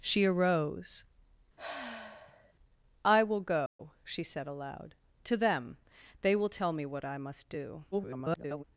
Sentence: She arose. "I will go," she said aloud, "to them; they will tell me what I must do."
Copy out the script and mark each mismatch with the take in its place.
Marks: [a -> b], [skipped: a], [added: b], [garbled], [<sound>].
She arose. [sigh] "I will go," [dropout] she said aloud, "to them; they will tell me what I must do." [garbled]